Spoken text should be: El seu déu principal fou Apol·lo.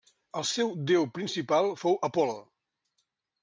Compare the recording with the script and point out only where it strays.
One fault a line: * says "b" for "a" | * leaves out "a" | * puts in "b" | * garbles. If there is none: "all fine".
all fine